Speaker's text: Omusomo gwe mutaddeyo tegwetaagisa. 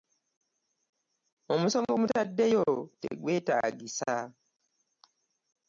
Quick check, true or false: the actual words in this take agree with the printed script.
false